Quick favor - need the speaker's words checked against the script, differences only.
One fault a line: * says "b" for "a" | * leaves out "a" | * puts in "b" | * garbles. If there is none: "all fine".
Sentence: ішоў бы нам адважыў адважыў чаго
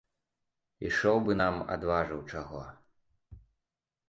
* leaves out "адважыў"